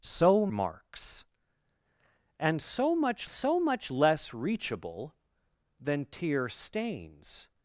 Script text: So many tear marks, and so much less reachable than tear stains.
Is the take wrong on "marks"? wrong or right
wrong